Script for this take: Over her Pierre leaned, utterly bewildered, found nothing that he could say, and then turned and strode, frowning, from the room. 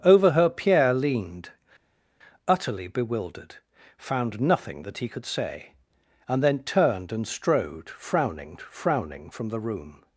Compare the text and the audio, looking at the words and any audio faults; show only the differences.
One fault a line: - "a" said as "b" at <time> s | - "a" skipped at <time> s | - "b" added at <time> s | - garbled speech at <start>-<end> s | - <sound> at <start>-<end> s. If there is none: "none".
- "frowning" added at 8.6 s